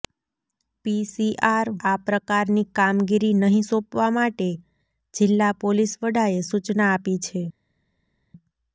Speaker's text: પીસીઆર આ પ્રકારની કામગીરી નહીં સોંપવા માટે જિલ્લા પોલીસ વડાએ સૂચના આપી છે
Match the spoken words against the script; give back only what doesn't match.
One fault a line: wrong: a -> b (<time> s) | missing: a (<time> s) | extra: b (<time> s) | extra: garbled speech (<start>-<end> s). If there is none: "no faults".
no faults